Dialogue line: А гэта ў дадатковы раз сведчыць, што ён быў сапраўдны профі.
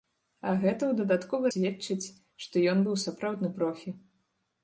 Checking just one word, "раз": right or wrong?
wrong